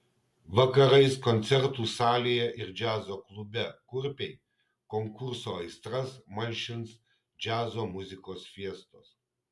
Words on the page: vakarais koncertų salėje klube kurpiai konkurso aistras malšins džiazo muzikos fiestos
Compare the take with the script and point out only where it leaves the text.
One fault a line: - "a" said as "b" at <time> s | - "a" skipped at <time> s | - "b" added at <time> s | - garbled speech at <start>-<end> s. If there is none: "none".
- "ir džiazo" added at 2.6 s